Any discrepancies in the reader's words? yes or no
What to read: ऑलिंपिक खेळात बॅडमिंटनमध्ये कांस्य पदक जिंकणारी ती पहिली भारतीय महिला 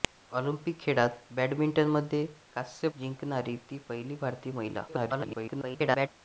yes